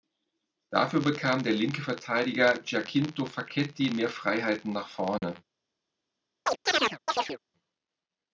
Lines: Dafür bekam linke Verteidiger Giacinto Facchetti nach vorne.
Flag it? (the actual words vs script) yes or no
yes